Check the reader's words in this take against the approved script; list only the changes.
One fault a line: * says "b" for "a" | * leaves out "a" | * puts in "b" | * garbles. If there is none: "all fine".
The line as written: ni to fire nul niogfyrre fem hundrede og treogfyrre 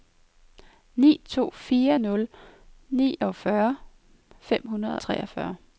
* leaves out "og"